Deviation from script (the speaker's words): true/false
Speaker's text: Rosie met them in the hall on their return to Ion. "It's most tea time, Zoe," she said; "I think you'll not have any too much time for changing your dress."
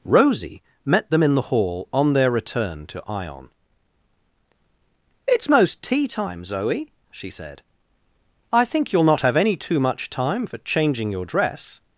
false